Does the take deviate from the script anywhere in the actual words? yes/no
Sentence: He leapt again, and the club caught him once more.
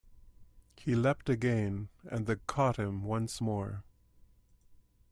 yes